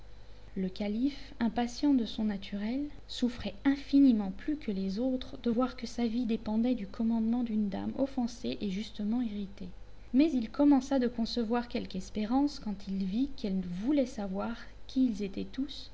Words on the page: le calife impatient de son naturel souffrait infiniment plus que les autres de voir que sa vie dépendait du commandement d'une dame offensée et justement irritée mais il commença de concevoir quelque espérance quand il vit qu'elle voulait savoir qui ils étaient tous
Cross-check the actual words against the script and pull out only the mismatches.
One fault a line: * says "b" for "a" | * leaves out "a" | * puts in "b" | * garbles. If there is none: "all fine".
all fine